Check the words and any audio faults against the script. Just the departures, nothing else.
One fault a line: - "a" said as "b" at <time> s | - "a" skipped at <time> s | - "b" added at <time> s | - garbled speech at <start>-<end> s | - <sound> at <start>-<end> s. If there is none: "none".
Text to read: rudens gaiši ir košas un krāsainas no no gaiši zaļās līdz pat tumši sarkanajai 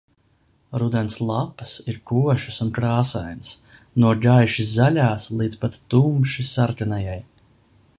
- "gaiši" said as "lapas" at 1.3 s
- "no" skipped at 4.2 s